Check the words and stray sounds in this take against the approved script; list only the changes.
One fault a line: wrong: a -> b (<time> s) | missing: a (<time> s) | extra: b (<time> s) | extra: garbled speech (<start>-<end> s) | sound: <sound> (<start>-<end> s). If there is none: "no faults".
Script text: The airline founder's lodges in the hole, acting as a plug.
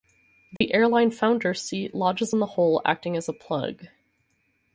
sound: dropout (0.6-0.6 s)
extra: seat (1.6 s)